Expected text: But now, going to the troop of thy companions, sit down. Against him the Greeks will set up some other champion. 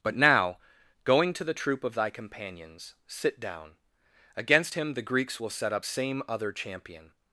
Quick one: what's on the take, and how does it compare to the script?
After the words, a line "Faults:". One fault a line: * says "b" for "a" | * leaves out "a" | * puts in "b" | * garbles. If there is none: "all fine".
But now, going to the troop of thy companions, sit down. Against him the Greeks will set up same other champion.
Faults:
* says "same" for "some"